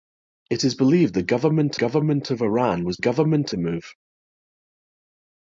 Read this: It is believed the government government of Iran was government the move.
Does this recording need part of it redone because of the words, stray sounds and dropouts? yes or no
no